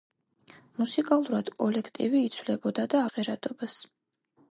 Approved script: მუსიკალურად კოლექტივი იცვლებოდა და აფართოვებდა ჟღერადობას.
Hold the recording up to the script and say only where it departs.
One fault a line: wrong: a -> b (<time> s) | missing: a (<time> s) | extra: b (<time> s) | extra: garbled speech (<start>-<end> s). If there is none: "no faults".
missing: აფართოვებდა (3.0 s)